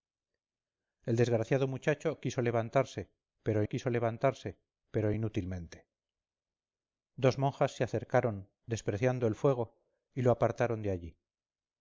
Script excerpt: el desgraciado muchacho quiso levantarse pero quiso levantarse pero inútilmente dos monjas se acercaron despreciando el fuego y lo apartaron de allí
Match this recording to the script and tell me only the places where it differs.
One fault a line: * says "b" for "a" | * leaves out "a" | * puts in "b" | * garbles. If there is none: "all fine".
all fine